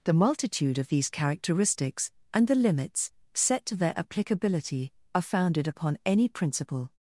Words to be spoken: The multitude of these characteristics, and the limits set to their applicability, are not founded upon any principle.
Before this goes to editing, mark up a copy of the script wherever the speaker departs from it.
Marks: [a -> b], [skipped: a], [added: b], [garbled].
The multitude of these characteristics, and the limits set to their applicability, are [skipped: not] founded upon any principle.